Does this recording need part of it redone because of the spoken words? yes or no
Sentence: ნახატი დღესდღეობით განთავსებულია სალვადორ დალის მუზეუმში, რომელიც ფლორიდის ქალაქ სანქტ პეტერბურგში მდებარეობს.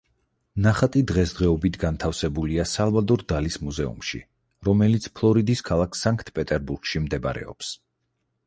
no